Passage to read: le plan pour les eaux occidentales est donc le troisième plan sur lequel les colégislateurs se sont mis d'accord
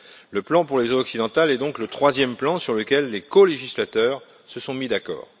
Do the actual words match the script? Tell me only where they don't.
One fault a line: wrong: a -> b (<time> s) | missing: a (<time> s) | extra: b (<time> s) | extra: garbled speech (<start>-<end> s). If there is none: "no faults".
no faults